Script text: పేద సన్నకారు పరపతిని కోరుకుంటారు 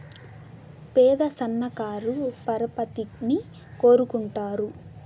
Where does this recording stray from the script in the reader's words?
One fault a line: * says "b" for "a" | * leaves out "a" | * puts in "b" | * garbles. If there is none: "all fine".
all fine